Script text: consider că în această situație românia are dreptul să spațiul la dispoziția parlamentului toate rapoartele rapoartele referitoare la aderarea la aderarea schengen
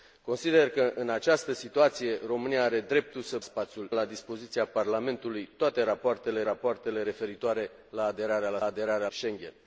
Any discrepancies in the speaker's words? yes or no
no